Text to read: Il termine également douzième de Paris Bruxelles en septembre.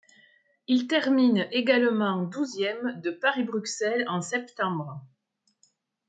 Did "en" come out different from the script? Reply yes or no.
no